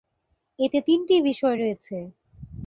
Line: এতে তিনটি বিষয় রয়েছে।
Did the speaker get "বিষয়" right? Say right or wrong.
right